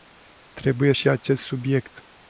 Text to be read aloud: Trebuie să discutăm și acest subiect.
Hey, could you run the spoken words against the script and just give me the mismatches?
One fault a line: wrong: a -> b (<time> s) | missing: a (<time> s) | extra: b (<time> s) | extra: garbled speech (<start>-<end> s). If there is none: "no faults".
missing: să discutăm (0.9 s)